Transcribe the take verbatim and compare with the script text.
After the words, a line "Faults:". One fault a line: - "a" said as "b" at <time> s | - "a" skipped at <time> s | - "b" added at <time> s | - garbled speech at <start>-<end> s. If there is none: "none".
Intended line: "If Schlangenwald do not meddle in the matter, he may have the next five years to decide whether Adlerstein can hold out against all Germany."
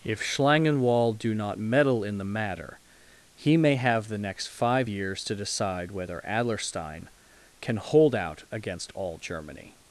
"If Schlangenwald do not meddle in the matter, he may have the next five years to decide whether Adlerstein can hold out against all Germany."
Faults:
none